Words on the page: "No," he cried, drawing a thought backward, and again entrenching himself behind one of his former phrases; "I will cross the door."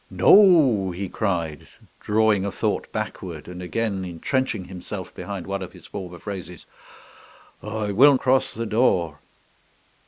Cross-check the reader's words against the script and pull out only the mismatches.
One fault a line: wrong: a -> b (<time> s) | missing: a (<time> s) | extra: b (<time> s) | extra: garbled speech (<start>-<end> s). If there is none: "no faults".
no faults